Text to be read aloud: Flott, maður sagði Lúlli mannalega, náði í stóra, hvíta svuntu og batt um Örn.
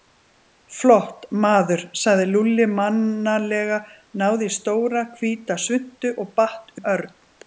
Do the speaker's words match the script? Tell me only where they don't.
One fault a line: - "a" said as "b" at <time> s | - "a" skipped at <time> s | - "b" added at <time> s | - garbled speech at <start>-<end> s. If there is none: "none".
none